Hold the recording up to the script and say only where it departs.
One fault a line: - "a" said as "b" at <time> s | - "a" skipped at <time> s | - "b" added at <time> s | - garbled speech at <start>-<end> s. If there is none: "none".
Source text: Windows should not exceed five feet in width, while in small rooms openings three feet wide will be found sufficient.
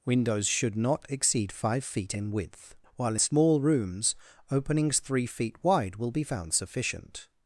- "in" skipped at 3.1 s